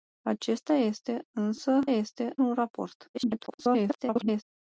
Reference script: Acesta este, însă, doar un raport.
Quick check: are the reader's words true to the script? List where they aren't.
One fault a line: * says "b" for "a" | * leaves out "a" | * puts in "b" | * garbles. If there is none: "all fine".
* says "este" for "doar"
* garbles